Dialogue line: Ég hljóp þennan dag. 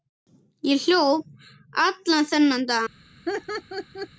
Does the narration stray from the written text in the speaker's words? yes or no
yes